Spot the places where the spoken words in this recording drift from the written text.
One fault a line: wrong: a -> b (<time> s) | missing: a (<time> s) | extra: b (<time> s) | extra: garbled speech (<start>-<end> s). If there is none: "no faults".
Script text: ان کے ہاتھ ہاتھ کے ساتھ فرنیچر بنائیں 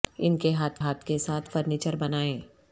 no faults